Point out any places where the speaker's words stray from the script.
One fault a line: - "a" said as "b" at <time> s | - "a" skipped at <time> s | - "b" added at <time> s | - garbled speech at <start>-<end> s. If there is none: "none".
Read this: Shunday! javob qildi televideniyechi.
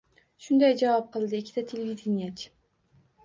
- "ikkita" added at 1.4 s